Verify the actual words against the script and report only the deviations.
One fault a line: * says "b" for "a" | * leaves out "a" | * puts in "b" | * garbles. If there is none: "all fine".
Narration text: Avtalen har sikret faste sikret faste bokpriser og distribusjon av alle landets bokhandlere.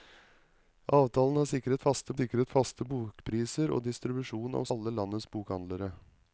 all fine